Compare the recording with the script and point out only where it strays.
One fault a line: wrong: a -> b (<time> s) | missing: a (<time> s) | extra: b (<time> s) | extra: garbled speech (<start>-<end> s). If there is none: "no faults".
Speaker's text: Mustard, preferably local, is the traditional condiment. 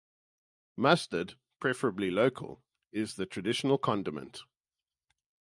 no faults